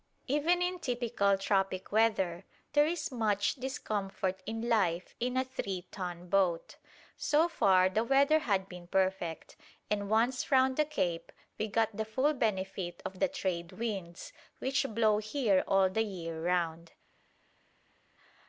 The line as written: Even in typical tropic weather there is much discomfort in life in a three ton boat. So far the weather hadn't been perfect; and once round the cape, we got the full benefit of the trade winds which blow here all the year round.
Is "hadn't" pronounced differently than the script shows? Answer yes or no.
yes